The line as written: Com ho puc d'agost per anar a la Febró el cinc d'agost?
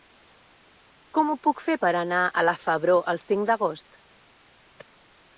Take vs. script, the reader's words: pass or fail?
fail